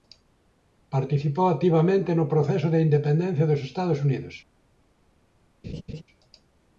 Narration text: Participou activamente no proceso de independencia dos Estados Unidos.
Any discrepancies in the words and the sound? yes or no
yes